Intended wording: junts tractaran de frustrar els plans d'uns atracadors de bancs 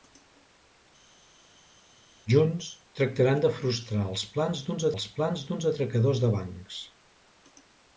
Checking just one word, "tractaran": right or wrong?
right